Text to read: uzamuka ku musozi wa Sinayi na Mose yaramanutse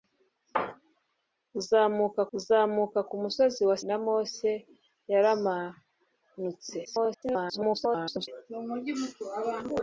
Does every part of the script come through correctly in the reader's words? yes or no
no